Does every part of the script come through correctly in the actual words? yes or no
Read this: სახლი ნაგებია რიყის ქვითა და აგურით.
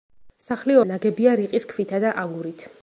yes